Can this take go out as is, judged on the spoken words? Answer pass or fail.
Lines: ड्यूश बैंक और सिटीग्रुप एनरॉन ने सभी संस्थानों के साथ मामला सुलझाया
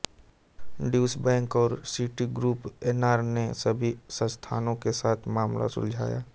pass